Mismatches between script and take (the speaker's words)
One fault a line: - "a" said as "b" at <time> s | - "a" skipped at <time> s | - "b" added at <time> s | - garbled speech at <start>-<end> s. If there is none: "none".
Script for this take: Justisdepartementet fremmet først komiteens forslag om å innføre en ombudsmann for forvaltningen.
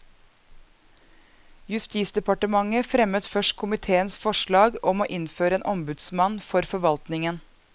none